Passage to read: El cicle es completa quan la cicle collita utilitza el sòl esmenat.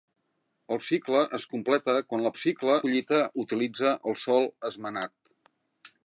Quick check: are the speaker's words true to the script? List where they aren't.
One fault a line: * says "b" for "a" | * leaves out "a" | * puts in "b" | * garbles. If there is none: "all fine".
all fine